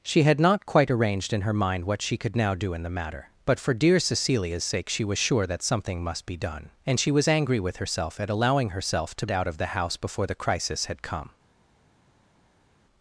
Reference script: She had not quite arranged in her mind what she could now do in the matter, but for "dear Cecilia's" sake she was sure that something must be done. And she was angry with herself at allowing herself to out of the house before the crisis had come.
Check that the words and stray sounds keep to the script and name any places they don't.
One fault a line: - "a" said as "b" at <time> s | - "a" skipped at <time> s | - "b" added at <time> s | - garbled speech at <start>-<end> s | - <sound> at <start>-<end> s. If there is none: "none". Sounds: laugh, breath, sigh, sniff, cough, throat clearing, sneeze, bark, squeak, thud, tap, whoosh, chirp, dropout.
none